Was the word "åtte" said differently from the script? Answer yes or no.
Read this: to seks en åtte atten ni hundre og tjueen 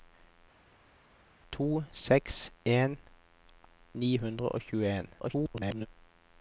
yes